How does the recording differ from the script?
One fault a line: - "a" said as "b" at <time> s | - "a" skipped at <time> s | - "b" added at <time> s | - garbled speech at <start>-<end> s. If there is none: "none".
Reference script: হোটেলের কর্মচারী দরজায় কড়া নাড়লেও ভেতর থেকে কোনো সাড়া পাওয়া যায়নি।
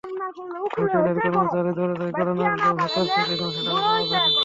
none